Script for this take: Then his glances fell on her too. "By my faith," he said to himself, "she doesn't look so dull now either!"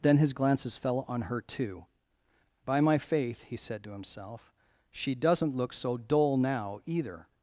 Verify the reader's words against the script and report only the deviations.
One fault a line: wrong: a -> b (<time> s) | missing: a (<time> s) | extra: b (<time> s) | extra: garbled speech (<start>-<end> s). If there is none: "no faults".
no faults